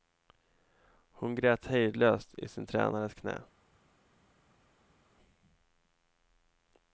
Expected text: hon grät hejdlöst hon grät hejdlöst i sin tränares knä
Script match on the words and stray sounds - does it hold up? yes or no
no